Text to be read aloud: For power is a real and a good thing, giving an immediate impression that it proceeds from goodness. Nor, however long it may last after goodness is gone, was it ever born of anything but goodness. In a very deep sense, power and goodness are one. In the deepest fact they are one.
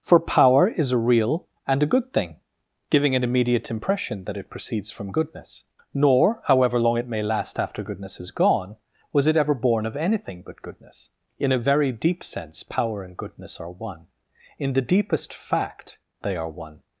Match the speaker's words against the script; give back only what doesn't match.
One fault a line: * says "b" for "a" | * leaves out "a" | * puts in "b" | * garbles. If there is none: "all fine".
all fine